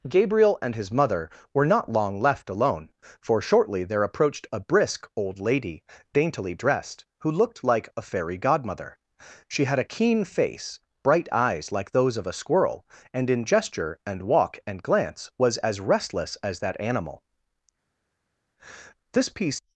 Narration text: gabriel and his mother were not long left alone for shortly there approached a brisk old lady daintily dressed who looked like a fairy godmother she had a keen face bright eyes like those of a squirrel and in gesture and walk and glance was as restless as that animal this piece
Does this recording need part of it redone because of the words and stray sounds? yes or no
no